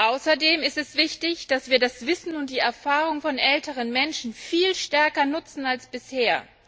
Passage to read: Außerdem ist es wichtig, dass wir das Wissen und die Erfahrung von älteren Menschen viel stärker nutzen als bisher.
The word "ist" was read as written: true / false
true